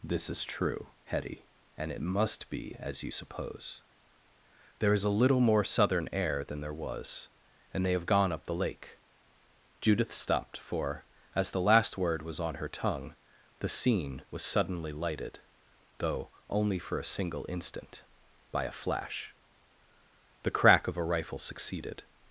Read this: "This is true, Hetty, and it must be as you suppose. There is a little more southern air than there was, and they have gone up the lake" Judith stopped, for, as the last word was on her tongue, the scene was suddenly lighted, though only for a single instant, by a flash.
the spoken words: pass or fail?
fail